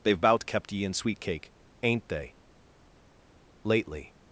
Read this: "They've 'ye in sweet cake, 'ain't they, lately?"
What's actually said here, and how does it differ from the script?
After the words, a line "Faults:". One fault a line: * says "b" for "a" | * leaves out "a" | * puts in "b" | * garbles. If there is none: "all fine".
"They've 'bout kept ye in sweet cake, 'ain't they, lately?"
Faults:
* puts in "bout kept"